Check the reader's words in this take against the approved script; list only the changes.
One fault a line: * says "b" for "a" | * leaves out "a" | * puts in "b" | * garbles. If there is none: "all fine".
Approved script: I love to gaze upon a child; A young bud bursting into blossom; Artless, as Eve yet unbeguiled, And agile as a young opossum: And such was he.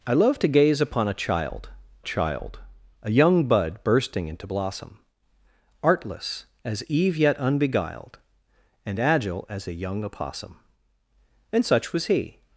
* puts in "child"